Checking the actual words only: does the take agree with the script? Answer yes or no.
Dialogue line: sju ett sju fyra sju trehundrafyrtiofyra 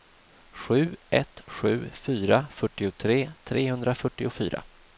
no